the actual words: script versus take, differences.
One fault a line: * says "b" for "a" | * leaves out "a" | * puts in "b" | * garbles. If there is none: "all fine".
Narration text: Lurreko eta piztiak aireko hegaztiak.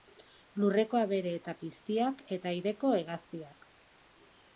* puts in "abere"
* puts in "eta"